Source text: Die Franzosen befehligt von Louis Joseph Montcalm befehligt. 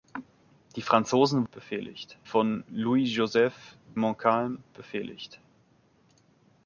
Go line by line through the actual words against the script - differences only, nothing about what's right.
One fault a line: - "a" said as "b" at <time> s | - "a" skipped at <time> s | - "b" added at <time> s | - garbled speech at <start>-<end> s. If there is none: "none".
none